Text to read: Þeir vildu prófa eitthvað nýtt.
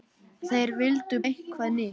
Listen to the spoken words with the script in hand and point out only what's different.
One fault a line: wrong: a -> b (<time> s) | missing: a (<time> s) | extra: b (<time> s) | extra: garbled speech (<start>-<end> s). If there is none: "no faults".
missing: prófa (1.2 s)